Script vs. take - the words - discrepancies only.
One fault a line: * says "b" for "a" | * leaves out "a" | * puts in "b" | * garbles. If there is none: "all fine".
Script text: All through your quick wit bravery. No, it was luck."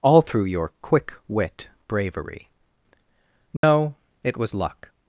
all fine